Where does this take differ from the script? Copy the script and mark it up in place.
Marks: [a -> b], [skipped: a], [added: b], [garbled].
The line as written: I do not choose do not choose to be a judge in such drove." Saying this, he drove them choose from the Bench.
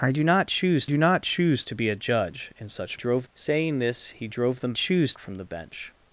I do not choose do not choose to be a judge in such drove." Saying this, he drove them choose from the Bench.